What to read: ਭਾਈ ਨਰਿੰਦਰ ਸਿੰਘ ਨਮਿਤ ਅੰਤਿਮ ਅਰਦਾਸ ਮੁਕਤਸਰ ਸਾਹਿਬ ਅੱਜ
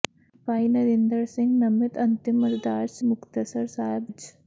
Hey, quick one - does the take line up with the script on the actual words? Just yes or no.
yes